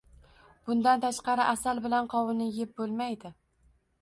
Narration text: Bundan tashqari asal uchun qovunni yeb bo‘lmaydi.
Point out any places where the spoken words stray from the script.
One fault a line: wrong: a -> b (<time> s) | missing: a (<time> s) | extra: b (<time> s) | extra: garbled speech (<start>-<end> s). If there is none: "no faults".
wrong: uchun -> bilan (1.9 s)